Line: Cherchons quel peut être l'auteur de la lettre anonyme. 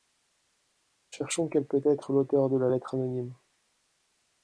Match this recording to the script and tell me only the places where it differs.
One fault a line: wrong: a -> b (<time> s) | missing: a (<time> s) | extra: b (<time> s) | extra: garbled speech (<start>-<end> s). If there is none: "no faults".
no faults